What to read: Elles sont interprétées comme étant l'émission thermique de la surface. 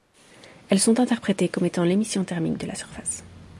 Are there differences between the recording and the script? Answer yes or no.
no